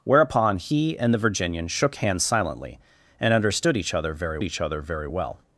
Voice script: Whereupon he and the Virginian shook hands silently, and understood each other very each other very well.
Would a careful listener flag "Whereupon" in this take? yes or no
no